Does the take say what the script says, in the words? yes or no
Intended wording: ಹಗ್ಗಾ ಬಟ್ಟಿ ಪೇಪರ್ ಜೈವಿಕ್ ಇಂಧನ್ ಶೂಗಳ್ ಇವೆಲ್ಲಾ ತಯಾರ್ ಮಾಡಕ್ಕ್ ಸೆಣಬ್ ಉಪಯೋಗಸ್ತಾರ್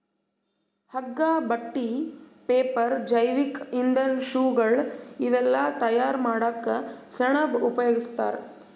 yes